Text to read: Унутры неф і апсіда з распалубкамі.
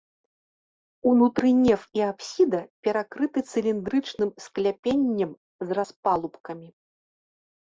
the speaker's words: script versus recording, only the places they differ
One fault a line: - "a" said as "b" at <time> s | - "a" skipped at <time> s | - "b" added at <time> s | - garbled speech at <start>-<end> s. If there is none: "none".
- "перакрыты цыліндрычным скляпеннем" added at 2.9 s